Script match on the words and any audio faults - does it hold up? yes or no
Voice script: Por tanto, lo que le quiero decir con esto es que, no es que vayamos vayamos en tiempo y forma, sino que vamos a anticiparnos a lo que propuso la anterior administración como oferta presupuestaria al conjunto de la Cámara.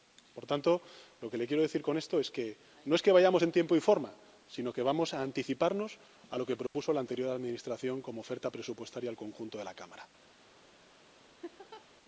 no